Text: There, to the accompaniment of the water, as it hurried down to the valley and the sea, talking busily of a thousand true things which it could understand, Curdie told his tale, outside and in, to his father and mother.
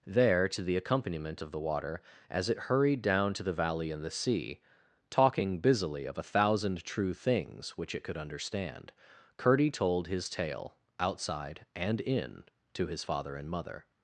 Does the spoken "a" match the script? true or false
true